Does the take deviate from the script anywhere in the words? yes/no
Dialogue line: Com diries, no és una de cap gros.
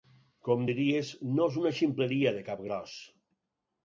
yes